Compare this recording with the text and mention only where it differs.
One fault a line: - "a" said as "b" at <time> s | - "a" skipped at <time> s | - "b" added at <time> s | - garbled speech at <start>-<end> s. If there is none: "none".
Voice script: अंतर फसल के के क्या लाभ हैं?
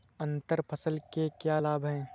- "के" skipped at 1.3 s